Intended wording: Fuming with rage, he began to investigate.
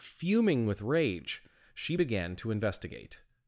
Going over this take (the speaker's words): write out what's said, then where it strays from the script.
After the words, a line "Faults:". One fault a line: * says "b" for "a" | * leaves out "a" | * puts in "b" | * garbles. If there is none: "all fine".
Fuming with rage, she began to investigate.
Faults:
* says "she" for "he"